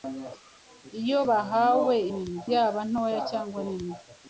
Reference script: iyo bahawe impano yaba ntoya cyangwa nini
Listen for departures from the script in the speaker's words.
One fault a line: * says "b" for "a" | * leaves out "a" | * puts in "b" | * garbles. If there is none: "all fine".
* says "nini" for "impano"